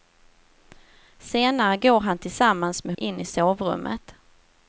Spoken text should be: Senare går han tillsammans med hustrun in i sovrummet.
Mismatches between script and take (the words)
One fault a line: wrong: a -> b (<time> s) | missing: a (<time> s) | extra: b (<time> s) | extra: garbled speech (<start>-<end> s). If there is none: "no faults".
missing: hustrun (3.0 s)